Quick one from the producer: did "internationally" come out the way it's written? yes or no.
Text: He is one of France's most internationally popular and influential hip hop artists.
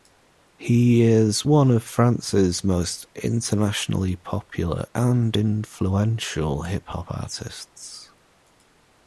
yes